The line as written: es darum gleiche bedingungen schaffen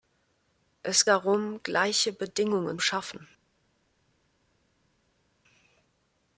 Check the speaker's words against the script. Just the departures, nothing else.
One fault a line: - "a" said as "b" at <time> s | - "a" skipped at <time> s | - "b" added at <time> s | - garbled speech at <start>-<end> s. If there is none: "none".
none